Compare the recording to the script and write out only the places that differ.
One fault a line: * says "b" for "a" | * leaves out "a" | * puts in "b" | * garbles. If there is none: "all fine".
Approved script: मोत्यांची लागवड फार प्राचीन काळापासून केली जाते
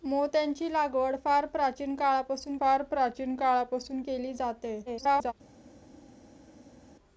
* puts in "फार प्राचीन काळापासून"
* garbles